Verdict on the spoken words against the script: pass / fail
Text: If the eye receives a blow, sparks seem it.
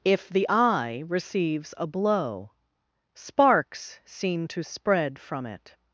fail